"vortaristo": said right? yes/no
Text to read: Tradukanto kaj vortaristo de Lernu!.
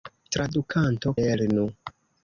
no